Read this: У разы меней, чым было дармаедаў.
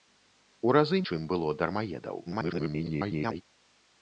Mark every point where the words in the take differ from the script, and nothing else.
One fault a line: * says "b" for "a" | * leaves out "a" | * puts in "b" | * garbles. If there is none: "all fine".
* leaves out "меней"
* garbles